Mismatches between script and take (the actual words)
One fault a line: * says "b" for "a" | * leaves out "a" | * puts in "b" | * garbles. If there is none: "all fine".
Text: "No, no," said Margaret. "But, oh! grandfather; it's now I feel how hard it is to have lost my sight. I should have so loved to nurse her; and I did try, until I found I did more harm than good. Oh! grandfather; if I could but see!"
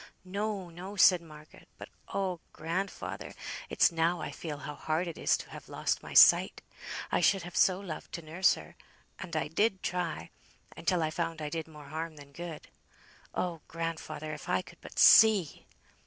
all fine